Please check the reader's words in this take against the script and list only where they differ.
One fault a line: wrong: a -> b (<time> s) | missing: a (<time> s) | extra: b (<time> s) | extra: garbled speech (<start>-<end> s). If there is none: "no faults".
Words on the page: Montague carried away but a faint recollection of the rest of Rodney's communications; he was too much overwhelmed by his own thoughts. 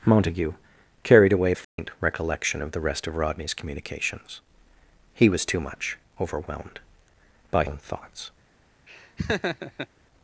missing: but (1.5 s)
missing: his (7.6 s)